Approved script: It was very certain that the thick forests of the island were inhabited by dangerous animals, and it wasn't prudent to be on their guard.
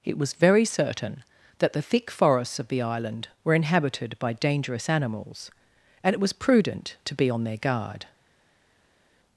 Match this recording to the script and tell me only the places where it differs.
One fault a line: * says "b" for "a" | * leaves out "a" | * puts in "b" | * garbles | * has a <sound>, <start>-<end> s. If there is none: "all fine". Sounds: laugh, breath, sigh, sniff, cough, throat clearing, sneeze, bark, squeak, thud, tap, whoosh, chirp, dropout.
* says "was" for "wasn't"